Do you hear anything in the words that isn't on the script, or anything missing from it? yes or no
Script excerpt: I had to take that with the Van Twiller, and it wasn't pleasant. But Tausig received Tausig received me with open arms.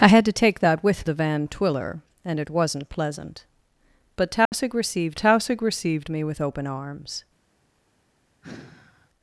no